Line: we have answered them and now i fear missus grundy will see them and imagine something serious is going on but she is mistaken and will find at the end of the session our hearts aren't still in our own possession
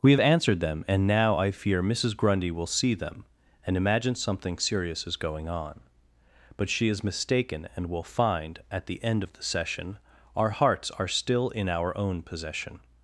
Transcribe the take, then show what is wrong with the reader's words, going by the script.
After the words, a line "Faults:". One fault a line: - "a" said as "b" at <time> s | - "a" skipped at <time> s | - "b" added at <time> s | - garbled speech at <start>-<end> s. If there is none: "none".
we have answered them and now i fear missus grundy will see them and imagine something serious is going on but she is mistaken and will find at the end of the session our hearts are still in our own possession
Faults:
- "aren't" said as "are" at 10.9 s